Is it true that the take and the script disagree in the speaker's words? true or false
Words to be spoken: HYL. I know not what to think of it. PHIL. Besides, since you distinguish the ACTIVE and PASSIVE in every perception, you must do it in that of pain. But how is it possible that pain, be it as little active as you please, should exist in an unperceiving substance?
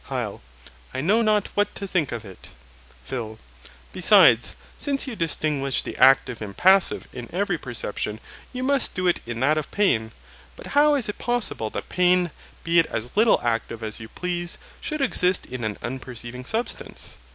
false